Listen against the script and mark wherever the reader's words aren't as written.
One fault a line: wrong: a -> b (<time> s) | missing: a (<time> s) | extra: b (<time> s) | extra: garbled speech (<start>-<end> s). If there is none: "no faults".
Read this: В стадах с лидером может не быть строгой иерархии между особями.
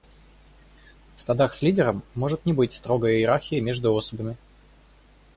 no faults